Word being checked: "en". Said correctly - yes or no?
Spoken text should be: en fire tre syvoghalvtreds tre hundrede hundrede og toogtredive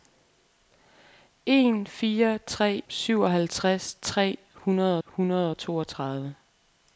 yes